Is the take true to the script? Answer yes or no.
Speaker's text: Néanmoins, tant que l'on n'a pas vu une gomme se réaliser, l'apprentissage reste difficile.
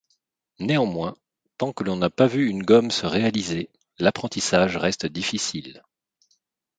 yes